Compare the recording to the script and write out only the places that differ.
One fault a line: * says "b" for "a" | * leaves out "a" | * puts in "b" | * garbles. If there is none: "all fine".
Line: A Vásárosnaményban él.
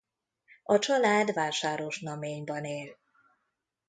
* puts in "család"